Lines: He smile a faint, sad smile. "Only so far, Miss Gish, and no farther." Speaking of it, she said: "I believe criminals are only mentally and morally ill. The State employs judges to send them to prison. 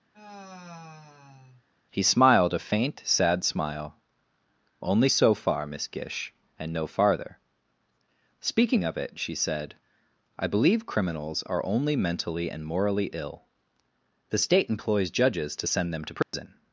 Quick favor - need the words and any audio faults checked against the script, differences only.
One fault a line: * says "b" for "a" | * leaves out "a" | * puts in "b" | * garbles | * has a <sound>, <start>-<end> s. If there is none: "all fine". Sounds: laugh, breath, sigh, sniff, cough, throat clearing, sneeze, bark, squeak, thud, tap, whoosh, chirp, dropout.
* has a sigh, 0.1-1.6 s
* says "smiled" for "smile"
* has a dropout, 16.2-16.3 s